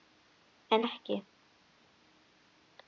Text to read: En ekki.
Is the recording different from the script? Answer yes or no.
no